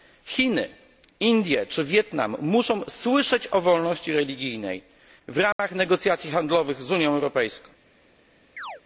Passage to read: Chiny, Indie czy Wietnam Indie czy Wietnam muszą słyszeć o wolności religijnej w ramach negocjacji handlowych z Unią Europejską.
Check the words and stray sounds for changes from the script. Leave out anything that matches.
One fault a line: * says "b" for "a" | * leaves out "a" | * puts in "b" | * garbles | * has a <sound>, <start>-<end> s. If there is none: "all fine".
* leaves out "Indie czy Wietnam"
* has a dropout, 5.5-5.6 s
* has a chirp, 8.6-8.8 s